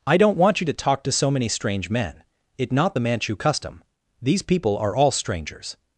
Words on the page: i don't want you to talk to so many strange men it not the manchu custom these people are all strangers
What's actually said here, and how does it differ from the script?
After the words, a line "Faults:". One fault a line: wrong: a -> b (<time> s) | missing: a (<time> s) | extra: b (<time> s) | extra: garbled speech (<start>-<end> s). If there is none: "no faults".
i don't want you to talk to so many strange men it not the manchu custom these people are all strangers
Faults:
no faults